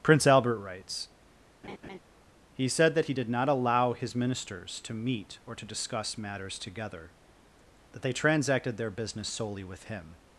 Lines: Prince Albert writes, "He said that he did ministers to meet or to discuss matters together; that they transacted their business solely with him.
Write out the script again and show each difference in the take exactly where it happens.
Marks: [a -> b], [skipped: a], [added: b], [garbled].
Prince Albert writes, "He said that he did [added: not allow his] ministers to meet or to discuss matters together; that they transacted their business solely with him.